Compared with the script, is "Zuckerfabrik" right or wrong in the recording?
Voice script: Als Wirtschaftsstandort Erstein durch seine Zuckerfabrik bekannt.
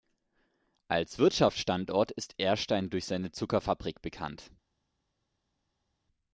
right